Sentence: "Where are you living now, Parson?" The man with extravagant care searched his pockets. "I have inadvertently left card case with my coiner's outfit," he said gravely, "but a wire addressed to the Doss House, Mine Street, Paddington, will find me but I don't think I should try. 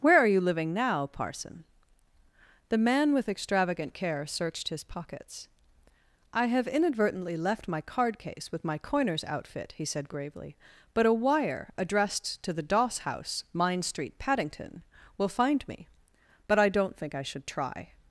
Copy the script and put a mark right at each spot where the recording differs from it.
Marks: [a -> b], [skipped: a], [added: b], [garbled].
"Where are you living now, Parson?" The man with extravagant care searched his pockets. "I have inadvertently left [added: my] card case with my coiner's outfit," he said gravely, "but a wire addressed to the Doss House, Mine Street, Paddington, will find me but I don't think I should try.